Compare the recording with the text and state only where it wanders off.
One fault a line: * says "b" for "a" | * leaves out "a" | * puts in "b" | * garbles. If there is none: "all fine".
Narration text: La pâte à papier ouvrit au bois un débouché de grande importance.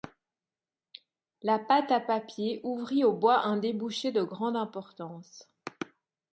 all fine